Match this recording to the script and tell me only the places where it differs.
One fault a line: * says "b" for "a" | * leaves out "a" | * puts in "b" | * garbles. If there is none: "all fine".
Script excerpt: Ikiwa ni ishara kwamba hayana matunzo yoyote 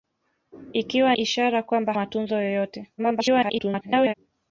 * leaves out "ni"
* leaves out "hayana"
* garbles